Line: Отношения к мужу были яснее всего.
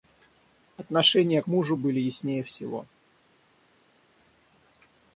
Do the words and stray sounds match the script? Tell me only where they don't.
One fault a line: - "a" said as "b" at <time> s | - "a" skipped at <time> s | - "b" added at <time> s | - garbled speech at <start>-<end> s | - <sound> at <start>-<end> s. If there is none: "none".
none